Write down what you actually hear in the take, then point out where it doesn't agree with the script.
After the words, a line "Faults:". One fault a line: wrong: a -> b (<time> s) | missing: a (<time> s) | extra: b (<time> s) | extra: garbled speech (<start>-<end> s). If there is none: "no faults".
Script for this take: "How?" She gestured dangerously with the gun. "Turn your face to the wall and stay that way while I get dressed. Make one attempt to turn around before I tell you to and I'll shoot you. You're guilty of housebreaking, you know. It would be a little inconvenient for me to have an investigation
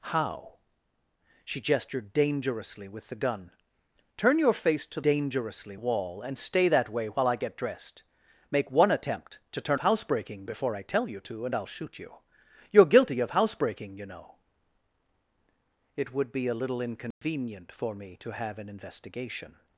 "How?" She gestured dangerously with the gun. "Turn your face to dangerously wall and stay that way while I get dressed. Make one attempt to turn housebreaking before I tell you to and I'll shoot you. You're guilty of housebreaking, you know. It would be a little inconvenient for me to have an investigation
Faults:
wrong: the -> dangerously (5.0 s)
wrong: around -> housebreaking (9.8 s)